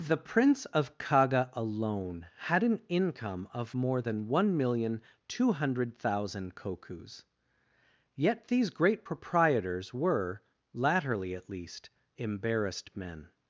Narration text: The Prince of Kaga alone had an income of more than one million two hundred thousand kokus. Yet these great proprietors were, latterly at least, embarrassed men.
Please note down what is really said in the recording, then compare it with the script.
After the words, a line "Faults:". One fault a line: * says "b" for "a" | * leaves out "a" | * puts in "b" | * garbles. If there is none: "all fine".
The Prince of Kaga alone had an income of more than one million two hundred thousand kokus. Yet these great proprietors were, latterly at least, embarrassed men.
Faults:
all fine